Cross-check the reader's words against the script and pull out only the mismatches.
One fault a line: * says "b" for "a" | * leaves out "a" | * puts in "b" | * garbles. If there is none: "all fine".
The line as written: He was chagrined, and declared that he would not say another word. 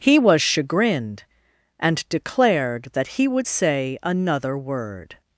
* leaves out "not"